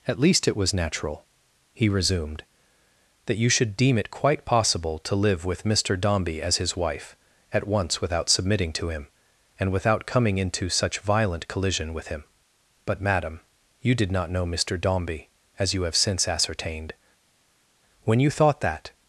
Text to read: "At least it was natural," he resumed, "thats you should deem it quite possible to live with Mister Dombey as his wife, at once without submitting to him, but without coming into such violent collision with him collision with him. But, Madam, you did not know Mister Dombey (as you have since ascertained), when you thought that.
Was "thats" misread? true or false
true